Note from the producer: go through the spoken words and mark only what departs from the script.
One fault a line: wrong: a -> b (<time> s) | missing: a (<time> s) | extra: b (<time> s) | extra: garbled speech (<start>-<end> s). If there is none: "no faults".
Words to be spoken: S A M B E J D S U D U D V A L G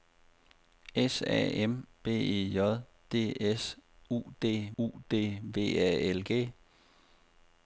no faults